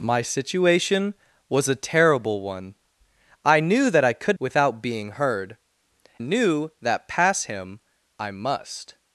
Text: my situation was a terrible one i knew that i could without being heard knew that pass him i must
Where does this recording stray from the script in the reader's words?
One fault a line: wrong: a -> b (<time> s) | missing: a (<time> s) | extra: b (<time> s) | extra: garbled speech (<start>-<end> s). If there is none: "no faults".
no faults